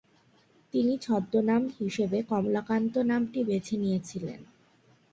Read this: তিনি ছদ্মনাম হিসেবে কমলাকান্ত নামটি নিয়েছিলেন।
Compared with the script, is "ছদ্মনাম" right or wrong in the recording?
right